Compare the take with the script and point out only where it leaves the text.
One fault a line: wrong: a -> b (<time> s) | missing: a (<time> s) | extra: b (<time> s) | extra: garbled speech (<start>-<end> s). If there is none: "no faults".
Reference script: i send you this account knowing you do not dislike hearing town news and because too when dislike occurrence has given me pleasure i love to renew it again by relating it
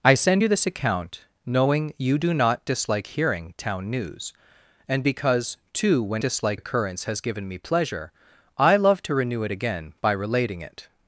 no faults